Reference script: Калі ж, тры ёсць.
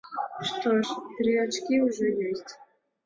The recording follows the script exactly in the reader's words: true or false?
false